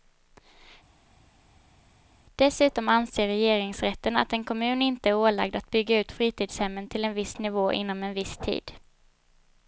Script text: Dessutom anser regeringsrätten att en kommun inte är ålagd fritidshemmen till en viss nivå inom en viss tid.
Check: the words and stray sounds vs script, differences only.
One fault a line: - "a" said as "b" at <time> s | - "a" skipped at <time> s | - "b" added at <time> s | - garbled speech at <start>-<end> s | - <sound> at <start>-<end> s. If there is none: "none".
- "att bygga ut" added at 5.6 s